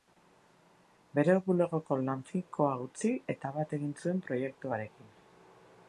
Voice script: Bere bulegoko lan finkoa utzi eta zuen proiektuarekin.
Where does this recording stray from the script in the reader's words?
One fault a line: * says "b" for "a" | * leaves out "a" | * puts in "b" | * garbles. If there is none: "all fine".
* puts in "bat egin"